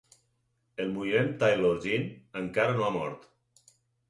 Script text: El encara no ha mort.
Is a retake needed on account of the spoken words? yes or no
yes